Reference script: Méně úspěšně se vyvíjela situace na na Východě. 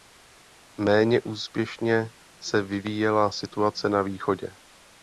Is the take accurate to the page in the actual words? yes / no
no